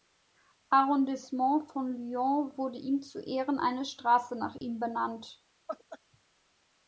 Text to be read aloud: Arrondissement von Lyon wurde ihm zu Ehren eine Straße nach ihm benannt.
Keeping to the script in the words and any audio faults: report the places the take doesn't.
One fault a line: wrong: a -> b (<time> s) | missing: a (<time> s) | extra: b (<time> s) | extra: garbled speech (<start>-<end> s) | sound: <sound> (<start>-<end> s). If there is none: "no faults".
sound: dropout (4.6-4.6 s)
sound: laugh (5.7-6.0 s)